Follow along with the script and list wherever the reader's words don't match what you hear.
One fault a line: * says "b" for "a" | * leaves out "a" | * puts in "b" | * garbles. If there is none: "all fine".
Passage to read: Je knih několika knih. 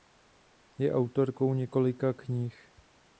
* says "autorkou" for "knih"